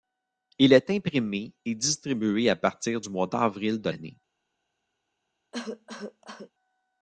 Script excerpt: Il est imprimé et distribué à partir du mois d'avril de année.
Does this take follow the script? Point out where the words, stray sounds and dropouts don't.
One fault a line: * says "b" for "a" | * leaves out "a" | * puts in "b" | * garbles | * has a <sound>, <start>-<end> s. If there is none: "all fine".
* has a cough, 5.5-6.5 s